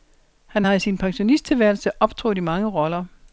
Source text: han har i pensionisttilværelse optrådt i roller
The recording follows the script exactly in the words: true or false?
false